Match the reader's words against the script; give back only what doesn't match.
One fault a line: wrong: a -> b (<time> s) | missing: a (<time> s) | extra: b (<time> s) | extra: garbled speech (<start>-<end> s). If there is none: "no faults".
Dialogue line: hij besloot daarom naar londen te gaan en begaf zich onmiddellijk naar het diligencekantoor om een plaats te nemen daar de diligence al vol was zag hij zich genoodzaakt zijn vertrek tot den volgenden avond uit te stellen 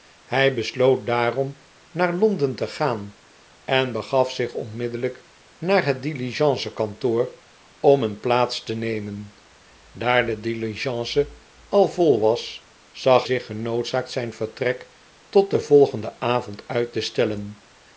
missing: hij (13.2 s)